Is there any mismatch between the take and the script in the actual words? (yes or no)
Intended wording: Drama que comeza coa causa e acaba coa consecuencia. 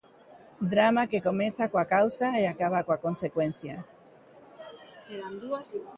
no